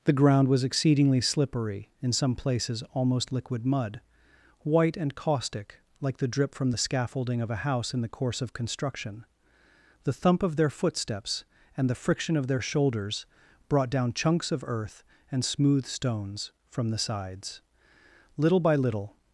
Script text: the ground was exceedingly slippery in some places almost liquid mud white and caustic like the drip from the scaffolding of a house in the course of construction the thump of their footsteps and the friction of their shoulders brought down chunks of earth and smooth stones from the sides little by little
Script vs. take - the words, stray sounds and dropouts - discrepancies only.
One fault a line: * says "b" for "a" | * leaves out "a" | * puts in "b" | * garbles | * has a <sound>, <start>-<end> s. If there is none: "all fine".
all fine